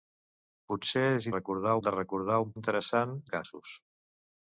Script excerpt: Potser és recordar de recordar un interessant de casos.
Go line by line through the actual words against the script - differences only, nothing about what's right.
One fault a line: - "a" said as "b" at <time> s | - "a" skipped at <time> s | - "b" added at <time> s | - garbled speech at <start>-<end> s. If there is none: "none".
none